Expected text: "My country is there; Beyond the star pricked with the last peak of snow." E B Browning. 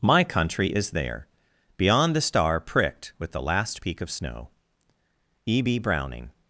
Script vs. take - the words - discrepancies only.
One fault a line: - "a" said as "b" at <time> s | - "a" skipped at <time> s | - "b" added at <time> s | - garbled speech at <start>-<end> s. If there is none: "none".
none